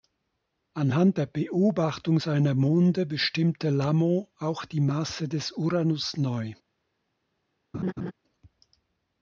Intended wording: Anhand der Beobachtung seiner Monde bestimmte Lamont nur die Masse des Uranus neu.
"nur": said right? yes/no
no